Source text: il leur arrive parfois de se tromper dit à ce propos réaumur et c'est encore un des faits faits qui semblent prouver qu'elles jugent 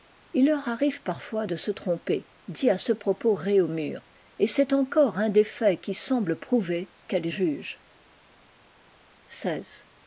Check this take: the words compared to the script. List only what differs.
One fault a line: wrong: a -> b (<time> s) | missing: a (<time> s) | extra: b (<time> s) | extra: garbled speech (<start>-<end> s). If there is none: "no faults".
missing: faits (5.8 s)